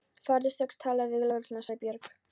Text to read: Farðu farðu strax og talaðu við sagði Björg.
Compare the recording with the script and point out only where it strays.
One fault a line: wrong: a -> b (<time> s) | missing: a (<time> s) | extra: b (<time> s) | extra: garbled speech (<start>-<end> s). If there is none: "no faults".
missing: farðu (0.5 s)
extra: lögregluna (1.3 s)